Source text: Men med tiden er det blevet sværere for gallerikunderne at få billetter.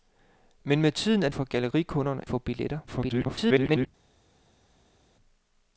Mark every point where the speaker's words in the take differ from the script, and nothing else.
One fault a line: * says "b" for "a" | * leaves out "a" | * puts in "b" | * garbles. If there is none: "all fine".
* leaves out "det blevet sværere"
* leaves out "at"
* garbles